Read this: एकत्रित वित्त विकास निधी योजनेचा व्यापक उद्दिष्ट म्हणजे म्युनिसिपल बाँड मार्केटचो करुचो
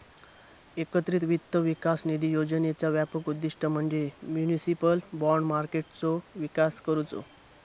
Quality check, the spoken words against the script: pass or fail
fail